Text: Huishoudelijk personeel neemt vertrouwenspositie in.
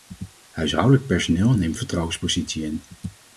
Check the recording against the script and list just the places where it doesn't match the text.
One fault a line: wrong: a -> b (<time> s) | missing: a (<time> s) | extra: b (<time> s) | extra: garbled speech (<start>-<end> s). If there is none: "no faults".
no faults